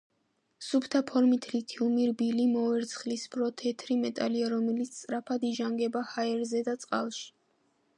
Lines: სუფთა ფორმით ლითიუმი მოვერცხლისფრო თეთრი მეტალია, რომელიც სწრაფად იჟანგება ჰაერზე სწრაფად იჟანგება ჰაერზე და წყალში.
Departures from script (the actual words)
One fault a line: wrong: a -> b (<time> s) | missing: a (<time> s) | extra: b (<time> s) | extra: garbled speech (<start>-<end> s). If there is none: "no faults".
extra: რბილი (2.1 s)
missing: სწრაფად იჟანგება ჰაერზე (6.7 s)